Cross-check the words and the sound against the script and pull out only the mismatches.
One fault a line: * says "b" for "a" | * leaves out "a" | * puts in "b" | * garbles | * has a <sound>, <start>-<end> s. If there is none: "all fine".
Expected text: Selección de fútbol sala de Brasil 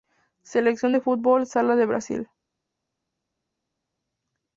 all fine